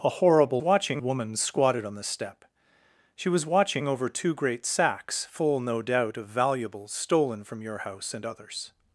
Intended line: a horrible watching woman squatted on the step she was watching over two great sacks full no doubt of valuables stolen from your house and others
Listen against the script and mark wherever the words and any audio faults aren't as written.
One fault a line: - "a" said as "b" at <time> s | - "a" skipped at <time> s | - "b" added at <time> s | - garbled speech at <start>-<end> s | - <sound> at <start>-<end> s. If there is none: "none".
none